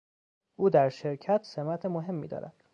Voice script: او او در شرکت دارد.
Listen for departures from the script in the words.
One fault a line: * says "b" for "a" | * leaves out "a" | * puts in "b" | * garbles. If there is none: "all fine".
* leaves out "او"
* puts in "سمت مهمی"